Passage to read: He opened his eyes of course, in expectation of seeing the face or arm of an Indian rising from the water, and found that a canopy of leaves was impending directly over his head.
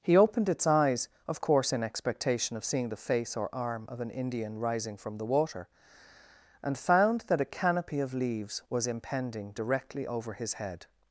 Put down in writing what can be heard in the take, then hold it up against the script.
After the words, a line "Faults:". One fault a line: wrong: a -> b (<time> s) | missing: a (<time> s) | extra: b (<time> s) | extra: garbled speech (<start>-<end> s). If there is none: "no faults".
He opened its eyes of course, in expectation of seeing the face or arm of an Indian rising from the water, and found that a canopy of leaves was impending directly over his head.
Faults:
wrong: his -> its (0.5 s)